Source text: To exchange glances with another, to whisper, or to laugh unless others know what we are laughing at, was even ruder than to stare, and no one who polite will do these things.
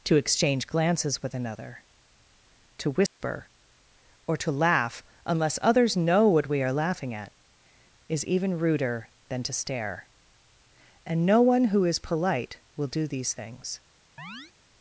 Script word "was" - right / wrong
wrong